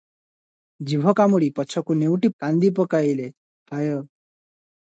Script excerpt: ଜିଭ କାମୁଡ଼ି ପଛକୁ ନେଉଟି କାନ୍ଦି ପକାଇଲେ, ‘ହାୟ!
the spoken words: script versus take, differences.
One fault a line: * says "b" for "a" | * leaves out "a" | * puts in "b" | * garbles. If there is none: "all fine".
all fine